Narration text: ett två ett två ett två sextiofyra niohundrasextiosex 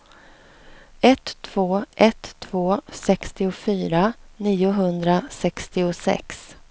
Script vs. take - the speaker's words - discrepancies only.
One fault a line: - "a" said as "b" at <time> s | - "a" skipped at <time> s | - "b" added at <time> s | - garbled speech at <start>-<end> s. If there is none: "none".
- "ett två" skipped at 2.8 s